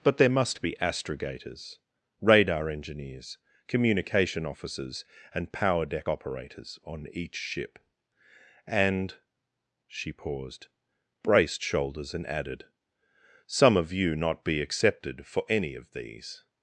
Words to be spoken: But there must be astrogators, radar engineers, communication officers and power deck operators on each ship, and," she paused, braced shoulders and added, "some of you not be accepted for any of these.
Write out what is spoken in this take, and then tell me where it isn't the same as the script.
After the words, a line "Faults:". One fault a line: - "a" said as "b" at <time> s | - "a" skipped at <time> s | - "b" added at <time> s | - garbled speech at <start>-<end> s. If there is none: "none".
But there must be astrogators, radar engineers, communication officers and power deck operators on each ship, and," she paused, braced shoulders and added, "some of you not be accepted for any of these.
Faults:
none